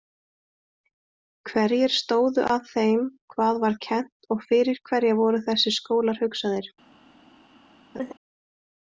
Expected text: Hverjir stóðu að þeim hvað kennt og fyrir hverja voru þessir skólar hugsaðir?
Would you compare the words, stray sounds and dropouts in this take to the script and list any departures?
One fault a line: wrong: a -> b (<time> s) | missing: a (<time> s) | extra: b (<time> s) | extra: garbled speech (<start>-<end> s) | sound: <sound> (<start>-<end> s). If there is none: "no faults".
extra: var (3.6 s)
sound: laugh (7.9-8.1 s)